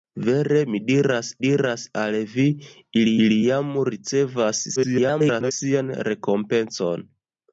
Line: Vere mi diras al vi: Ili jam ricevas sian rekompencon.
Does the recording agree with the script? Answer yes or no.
no